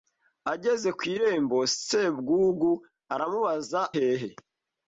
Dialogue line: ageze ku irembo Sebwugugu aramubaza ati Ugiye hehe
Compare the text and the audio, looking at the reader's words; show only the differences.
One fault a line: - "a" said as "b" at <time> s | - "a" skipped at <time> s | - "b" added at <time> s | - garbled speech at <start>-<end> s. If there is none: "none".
- "ati Ugiye" skipped at 3.8 s